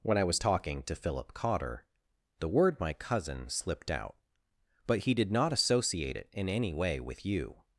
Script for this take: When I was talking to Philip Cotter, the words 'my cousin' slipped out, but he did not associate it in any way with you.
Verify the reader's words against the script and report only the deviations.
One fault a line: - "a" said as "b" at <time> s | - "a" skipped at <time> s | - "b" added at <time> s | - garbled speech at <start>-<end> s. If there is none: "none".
- "words" said as "word" at 2.5 s